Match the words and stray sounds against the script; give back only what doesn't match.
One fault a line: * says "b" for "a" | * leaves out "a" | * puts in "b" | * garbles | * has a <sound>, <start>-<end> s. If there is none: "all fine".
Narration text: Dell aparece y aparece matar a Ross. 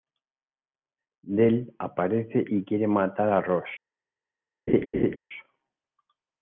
* says "quiere" for "aparece"
* has a laugh, 4.7-5.2 s